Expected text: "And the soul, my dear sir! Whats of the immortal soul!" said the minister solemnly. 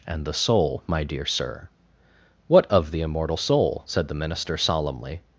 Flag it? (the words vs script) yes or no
yes